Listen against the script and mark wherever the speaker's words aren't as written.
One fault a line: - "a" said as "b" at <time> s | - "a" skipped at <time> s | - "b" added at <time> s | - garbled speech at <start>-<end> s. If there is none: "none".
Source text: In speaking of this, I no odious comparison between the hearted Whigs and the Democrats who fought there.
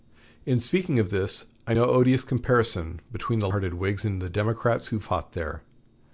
none